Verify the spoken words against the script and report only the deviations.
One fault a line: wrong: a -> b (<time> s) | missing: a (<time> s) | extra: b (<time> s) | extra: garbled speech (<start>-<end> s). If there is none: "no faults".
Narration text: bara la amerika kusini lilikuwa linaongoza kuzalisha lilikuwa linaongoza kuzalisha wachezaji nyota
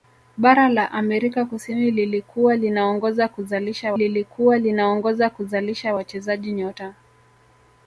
no faults